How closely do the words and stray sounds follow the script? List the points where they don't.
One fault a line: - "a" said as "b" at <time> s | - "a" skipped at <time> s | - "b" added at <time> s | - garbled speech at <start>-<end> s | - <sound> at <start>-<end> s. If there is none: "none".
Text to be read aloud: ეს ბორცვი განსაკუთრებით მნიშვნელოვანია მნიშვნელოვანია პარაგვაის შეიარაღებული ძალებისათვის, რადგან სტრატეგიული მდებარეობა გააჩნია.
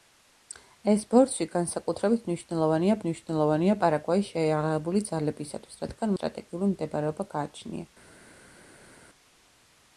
none